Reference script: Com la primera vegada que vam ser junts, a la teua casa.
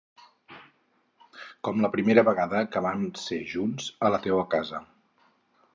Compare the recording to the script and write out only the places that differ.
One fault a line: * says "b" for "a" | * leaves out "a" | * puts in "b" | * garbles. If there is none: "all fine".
all fine